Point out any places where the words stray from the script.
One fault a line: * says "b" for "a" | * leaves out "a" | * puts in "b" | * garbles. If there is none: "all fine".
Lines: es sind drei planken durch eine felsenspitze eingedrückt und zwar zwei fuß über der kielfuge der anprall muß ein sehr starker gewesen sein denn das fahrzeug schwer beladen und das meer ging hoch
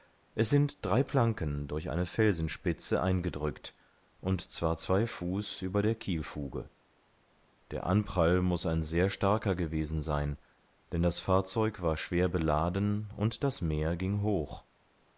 * puts in "war"